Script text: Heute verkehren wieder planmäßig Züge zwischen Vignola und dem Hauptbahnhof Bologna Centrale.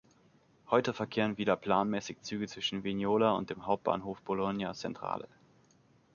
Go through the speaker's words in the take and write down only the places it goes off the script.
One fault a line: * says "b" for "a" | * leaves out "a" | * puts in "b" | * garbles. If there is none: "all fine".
all fine